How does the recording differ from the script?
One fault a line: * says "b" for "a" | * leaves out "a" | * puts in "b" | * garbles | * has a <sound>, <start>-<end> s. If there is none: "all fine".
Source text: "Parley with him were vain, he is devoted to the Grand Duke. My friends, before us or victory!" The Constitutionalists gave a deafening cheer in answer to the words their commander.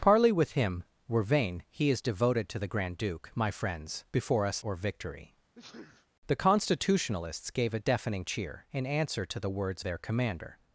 * has a sneeze, 5.6-6.1 s